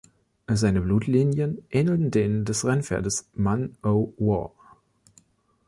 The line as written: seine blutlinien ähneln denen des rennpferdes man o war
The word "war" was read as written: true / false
true